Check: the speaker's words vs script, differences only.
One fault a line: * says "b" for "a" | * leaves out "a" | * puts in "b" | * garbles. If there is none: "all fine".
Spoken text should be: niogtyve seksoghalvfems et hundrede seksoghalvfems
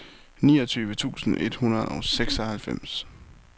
* says "tusind" for "seksoghalvfems"
* puts in "og"